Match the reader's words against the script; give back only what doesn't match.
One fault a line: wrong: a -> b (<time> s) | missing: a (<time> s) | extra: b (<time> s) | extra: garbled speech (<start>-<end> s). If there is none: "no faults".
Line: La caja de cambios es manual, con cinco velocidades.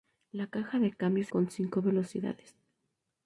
missing: es manual (1.3 s)